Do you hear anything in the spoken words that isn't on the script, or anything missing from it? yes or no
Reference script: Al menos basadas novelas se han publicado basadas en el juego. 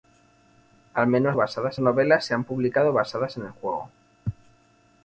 no